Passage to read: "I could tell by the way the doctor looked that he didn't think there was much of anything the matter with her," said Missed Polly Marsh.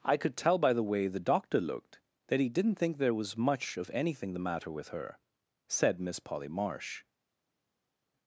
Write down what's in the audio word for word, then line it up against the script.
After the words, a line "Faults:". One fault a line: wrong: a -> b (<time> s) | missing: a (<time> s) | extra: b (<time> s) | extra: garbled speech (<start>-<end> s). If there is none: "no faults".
"I could tell by the way the doctor looked that he didn't think there was much of anything the matter with her," said Miss Polly Marsh.
Faults:
wrong: Missed -> Miss (6.0 s)